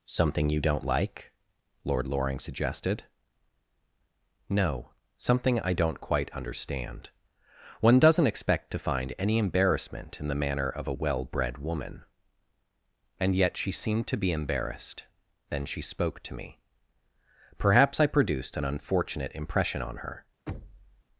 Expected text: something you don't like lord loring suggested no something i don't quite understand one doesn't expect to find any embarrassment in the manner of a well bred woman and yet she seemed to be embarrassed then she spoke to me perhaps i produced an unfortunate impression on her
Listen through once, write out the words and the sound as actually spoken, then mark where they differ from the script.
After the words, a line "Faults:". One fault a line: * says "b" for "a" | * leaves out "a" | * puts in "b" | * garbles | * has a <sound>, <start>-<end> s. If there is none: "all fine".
something you don't like lord loring suggested no something i don't quite understand one doesn't expect to find any embarrassment in the manner of a well bred woman and yet she seemed to be embarrassed then she spoke to me perhaps i produced an unfortunate impression on her
Faults:
* has a thud, 20.5-21.0 s